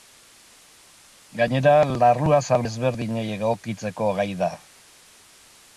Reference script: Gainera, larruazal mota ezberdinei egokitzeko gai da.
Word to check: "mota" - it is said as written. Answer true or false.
false